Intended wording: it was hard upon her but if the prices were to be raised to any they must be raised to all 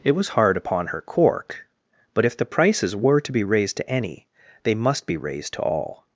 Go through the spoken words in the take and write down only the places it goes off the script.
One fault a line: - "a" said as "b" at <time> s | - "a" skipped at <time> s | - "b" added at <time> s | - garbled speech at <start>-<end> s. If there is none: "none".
- "cork" added at 1.0 s